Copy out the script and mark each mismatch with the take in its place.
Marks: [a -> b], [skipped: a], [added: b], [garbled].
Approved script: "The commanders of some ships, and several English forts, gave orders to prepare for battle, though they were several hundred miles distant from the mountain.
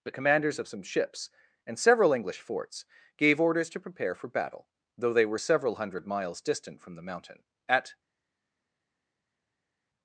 "The commanders of some ships, and several English forts, gave orders to prepare for battle, though they were several hundred miles distant from the mountain. [added: At]